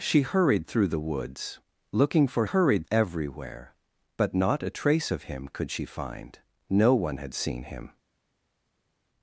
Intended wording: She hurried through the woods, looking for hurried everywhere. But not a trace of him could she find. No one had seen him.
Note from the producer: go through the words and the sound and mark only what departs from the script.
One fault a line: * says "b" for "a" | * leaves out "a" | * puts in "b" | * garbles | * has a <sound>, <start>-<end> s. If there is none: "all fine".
all fine